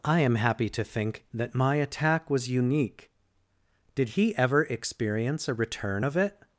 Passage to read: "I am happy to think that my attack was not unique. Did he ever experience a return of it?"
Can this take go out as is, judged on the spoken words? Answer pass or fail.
fail